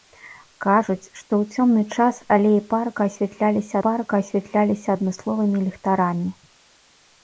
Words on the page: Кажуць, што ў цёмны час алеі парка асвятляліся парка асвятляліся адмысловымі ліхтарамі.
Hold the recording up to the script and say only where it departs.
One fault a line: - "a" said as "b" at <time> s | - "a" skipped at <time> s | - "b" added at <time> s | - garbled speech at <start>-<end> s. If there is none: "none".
none